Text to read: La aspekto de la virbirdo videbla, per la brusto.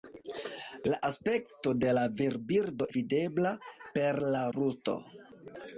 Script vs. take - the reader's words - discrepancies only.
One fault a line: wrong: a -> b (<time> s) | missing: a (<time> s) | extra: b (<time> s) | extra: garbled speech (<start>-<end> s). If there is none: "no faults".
no faults